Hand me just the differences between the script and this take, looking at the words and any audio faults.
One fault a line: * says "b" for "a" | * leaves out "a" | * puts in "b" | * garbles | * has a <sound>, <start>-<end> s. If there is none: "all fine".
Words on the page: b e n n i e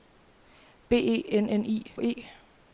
all fine